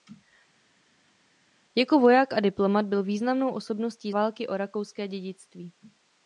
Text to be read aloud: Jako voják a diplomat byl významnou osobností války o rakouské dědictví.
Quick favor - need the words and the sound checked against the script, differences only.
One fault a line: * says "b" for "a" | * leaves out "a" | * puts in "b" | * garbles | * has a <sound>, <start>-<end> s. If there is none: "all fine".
all fine